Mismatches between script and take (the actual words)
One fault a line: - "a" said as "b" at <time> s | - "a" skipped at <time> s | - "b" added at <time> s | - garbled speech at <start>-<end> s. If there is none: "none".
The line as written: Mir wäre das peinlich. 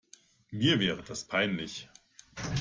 none